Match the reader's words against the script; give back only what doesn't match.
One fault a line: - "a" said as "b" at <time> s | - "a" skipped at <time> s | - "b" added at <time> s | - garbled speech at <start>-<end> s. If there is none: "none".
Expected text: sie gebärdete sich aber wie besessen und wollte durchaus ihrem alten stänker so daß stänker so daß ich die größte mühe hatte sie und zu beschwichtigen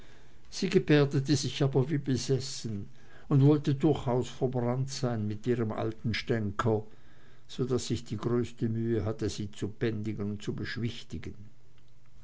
- "ihrem alten stänker so daß" said as "verbrannt sein mit ihrem alten" at 4.3 s
- "zu bändigen" added at 9.5 s